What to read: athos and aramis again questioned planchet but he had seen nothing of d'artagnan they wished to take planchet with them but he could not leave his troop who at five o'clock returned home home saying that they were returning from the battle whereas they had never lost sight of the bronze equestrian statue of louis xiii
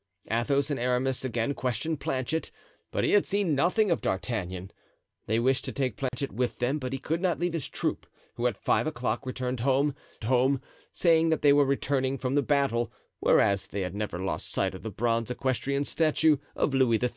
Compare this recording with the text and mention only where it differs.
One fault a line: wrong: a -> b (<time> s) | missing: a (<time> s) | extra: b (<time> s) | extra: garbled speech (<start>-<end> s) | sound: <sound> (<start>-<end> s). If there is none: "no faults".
sound: dropout (6.1-6.1 s)